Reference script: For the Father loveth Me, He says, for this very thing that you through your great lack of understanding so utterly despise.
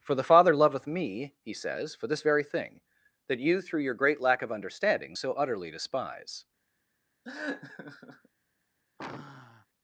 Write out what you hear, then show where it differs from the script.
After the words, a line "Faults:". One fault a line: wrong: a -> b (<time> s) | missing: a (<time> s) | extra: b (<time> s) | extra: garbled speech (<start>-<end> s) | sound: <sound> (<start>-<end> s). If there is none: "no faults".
For the Father loveth Me, He says, for this very thing that you through your great lack of understanding so utterly despise.
Faults:
sound: laugh (7.2-8.3 s)
sound: sigh (9.0-9.7 s)